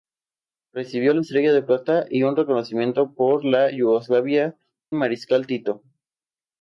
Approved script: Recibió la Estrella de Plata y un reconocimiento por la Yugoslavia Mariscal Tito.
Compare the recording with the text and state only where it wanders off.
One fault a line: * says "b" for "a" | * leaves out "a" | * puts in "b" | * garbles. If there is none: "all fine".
all fine